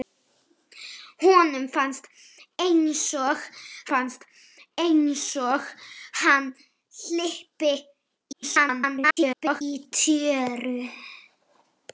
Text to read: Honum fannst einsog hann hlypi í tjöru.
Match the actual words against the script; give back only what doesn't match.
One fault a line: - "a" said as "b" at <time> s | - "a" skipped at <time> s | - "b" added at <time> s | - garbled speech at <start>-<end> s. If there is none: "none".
- "fannst einsog" added at 3.9 s
- garbled speech at 8.3-9.6 s